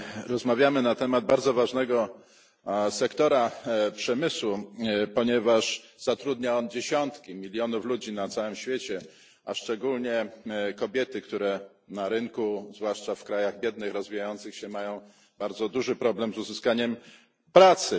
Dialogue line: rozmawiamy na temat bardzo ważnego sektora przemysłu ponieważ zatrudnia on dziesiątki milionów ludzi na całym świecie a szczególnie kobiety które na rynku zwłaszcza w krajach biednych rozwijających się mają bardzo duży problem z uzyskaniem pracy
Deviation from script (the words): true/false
false